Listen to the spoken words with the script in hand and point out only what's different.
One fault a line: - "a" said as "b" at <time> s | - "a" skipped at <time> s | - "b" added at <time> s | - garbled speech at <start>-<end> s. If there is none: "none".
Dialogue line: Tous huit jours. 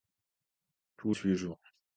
none